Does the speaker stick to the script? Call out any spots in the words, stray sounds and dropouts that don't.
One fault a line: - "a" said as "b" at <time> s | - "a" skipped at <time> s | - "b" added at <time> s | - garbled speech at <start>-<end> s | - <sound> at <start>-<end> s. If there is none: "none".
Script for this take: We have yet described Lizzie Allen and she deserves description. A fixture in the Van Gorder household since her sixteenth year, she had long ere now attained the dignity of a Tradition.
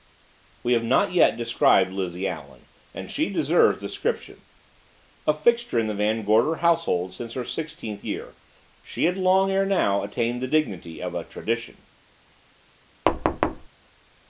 - "not" added at 0.8 s
- thud at 13.1-13.7 s